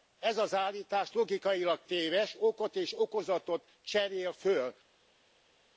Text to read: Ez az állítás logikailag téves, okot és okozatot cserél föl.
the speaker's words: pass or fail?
pass